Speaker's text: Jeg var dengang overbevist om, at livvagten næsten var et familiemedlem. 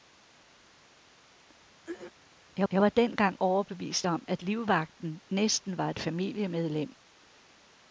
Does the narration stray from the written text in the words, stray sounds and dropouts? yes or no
yes